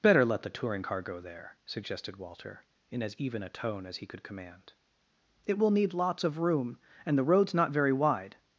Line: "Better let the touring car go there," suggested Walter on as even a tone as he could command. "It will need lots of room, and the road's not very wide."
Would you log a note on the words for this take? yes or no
yes